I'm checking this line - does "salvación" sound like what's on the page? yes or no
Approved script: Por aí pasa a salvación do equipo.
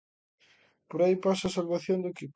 yes